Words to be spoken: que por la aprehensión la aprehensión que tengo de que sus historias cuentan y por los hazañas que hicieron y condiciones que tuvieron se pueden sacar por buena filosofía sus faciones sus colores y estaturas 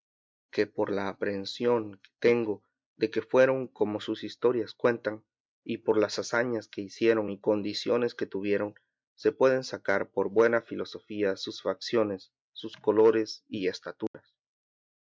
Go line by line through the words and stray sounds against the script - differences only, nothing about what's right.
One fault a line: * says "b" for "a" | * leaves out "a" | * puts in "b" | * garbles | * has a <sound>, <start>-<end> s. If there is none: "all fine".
* leaves out "la aprehensión"
* puts in "fueron como"
* says "las" for "los"
* has a dropout, 14.1-14.1 s